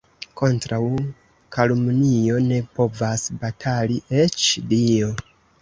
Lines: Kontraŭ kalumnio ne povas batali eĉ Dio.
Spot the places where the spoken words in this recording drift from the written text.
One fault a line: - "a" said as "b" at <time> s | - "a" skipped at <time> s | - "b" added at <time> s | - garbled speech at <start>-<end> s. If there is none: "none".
none